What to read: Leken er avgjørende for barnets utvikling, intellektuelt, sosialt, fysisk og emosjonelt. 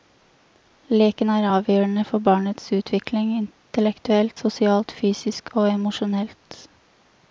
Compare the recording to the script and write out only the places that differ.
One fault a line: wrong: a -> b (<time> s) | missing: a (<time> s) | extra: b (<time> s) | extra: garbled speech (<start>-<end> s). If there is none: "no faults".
no faults